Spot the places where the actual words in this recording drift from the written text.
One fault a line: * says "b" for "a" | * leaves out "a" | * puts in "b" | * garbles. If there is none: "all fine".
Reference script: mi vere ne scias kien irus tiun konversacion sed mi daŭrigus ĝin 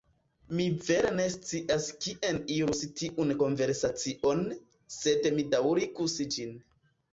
all fine